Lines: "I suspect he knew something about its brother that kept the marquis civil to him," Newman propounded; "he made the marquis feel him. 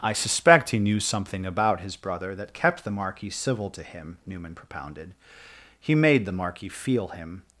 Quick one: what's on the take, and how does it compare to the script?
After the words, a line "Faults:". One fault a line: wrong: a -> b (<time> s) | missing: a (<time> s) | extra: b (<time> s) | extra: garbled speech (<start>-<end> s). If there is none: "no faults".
"I suspect he knew something about his brother that kept the marquis civil to him," Newman propounded; "he made the marquis feel him.
Faults:
wrong: its -> his (1.8 s)